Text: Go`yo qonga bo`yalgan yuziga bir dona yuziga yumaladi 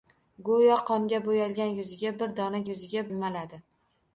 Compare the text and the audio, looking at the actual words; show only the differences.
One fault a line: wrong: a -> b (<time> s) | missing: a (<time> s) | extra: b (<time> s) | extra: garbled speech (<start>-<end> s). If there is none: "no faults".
no faults